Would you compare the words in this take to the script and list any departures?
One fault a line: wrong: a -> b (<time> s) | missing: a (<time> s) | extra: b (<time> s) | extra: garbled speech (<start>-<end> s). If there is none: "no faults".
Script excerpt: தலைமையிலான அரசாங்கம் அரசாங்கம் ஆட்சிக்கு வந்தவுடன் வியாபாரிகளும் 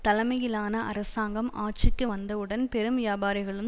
missing: அரசாங்கம் (1.5 s)
extra: பெரும் (2.7 s)